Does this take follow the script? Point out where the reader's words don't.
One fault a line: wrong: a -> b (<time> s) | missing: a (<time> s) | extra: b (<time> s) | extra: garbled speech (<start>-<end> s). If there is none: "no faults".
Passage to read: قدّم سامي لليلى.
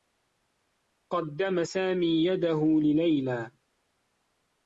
extra: يده (2.3 s)